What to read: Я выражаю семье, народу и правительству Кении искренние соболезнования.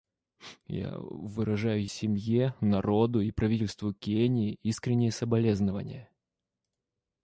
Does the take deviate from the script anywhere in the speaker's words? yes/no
no